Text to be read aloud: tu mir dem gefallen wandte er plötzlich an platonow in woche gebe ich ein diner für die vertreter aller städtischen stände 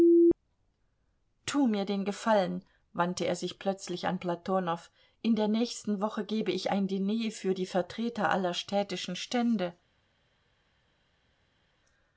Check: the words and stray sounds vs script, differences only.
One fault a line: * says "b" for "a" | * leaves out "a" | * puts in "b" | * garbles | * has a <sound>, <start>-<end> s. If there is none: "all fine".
* says "den" for "dem"
* puts in "sich"
* puts in "der nächsten"